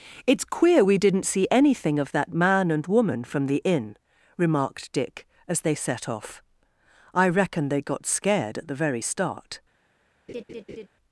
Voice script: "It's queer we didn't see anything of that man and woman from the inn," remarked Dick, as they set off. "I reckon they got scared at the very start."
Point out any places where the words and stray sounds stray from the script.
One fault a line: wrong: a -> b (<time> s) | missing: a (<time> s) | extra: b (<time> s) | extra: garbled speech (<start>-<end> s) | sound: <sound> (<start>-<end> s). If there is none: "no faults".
sound: laugh (10.3-10.9 s)